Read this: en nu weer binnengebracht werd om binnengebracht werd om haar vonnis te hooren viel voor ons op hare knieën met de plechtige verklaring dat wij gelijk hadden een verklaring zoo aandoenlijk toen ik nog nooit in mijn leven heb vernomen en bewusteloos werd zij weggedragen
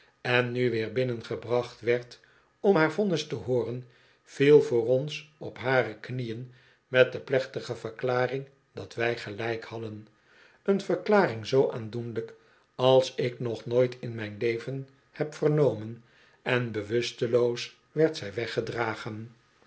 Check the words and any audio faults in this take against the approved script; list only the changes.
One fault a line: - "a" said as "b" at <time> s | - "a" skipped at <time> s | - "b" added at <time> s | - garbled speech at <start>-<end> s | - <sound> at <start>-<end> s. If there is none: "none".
- "binnengebracht werd om" skipped at 2.8 s
- "toen" said as "als" at 12.7 s